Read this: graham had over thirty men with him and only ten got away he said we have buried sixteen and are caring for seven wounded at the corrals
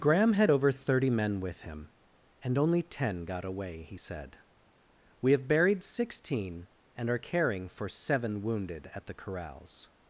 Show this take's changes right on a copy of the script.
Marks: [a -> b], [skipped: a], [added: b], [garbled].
graham had over thirty men with him and only ten got away he said we have buried sixteen and are caring for seven wounded at the corrals